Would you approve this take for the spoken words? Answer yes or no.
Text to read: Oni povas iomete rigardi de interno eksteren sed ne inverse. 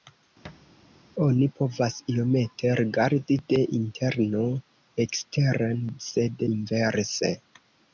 no